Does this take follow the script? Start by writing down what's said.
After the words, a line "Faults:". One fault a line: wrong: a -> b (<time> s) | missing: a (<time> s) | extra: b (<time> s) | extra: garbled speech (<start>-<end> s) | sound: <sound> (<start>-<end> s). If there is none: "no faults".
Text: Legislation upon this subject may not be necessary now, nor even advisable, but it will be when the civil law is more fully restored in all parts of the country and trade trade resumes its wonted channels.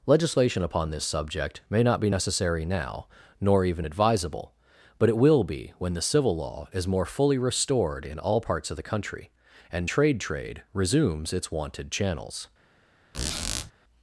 Legislation upon this subject may not be necessary now, nor even advisable, but it will be when the civil law is more fully restored in all parts of the country and trade trade resumes its wonted channels.
Faults:
sound: squeak (13.1-13.7 s)